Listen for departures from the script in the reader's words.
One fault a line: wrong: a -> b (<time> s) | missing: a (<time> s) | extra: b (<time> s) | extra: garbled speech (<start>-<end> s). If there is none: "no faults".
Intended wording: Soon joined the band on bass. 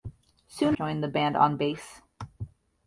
no faults